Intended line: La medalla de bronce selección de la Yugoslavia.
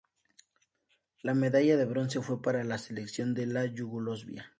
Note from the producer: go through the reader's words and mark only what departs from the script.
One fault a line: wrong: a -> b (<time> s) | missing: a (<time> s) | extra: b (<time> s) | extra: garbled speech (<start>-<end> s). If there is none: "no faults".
extra: fue para la (2.2 s)